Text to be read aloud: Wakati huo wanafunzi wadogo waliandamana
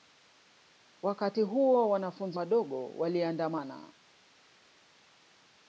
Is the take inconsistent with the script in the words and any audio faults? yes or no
no